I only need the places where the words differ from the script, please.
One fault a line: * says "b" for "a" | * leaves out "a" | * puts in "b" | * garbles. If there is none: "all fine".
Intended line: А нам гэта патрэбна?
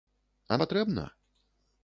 * leaves out "нам гэта"